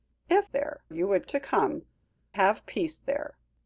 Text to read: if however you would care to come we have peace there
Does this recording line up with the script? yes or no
no